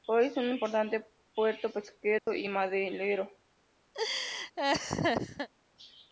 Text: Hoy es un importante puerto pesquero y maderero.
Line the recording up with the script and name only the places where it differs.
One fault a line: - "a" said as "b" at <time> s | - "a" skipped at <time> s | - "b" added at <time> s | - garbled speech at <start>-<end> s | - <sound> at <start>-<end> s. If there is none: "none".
- dropout at 2.2-2.3 s
- laugh at 3.9-5.5 s